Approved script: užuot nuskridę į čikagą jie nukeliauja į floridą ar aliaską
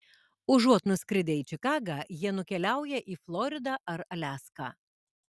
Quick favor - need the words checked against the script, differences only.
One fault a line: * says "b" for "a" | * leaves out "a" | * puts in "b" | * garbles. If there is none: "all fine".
all fine